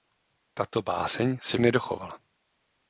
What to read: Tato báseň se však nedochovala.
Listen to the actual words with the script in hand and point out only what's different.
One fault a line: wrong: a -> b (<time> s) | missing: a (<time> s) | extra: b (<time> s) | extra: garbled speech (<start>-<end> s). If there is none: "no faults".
missing: však (1.6 s)